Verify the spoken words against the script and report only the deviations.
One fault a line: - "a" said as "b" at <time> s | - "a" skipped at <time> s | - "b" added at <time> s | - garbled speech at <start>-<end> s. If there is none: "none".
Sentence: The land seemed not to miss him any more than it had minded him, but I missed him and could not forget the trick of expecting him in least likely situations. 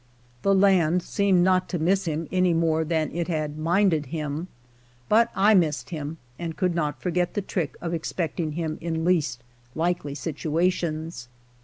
none